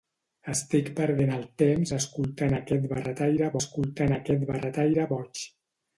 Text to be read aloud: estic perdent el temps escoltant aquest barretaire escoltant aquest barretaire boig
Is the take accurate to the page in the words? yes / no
yes